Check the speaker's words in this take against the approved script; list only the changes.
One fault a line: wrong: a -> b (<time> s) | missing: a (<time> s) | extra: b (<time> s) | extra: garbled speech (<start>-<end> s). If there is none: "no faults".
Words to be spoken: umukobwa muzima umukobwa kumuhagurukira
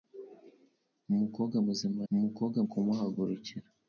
no faults